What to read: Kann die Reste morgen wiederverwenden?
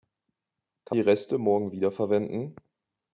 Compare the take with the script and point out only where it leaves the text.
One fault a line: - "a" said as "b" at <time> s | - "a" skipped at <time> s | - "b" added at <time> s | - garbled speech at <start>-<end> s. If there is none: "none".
none